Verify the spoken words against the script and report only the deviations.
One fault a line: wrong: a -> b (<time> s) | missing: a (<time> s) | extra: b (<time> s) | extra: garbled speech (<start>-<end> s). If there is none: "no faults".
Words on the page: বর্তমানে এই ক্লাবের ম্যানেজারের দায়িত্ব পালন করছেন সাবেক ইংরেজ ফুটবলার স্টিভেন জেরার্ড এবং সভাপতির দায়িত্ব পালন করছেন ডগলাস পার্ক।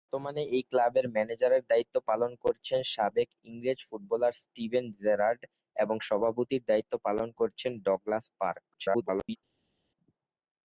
extra: garbled speech (8.7-9.4 s)